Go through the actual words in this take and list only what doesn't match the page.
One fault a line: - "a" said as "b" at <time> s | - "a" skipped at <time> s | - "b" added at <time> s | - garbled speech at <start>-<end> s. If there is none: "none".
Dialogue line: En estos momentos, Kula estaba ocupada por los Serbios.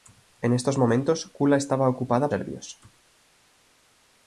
- "por los" skipped at 2.3 s